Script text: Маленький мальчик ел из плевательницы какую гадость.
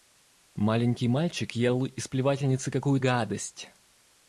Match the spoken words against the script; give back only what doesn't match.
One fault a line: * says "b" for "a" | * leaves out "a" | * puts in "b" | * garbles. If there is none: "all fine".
all fine